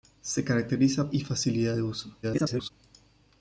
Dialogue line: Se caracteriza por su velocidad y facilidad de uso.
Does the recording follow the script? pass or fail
fail